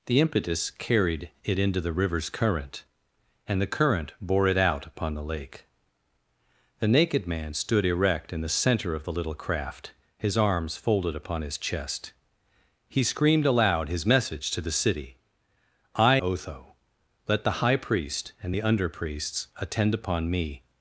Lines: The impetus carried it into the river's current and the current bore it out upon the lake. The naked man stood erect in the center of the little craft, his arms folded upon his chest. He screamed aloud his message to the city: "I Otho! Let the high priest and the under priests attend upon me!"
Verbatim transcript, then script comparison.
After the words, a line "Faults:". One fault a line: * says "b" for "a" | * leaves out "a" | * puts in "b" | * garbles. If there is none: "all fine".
The impetus carried it into the river's current and the current bore it out upon the lake. The naked man stood erect in the center of the little craft, his arms folded upon his chest. He screamed aloud his message to the city: "I Otho! Let the high priest and the under priests attend upon me!"
Faults:
all fine